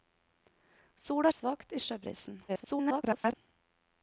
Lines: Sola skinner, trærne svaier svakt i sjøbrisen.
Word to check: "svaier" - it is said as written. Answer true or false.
false